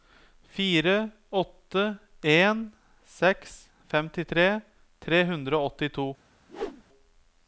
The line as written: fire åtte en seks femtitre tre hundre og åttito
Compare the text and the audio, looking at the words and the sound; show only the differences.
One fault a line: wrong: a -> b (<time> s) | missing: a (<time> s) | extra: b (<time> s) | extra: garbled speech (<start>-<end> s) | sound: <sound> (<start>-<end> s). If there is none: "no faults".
sound: whoosh (6.5-6.8 s)